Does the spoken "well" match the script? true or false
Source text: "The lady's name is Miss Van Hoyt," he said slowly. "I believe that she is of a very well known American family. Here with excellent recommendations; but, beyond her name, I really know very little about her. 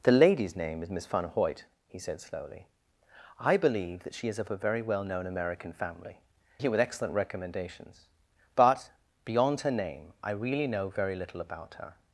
true